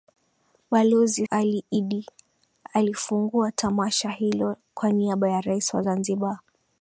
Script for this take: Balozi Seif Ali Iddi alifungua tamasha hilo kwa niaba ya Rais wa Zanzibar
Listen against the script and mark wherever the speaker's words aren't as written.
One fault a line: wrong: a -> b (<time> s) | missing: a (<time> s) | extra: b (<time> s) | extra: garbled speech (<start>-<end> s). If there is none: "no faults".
missing: Seif (1.3 s)